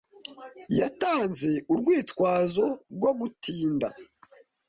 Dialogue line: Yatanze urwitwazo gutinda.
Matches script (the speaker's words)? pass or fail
fail